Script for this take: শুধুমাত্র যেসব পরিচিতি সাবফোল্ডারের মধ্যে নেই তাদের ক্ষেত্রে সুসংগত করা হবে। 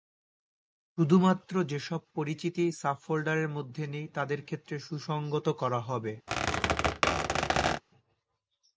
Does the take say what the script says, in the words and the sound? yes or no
no